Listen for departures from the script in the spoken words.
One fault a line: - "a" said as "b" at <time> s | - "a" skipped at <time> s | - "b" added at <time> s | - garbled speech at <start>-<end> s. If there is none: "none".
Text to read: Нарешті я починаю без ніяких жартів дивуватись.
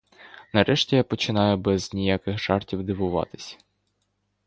none